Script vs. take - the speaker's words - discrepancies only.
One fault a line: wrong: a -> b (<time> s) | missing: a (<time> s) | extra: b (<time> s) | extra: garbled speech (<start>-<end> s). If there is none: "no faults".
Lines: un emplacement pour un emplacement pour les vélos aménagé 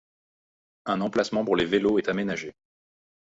missing: un emplacement pour (1.6 s)
extra: est (1.9 s)